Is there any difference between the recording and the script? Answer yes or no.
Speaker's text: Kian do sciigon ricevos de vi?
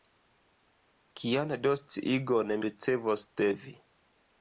no